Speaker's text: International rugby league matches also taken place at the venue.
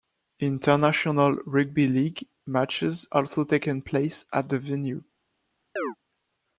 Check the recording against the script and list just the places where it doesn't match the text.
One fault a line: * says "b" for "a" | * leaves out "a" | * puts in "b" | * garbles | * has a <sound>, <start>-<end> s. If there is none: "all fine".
* has a chirp, 5.8-6.0 s